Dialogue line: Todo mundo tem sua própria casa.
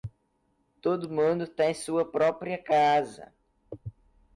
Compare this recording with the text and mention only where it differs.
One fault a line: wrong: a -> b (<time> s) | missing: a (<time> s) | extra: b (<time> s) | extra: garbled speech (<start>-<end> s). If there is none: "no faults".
no faults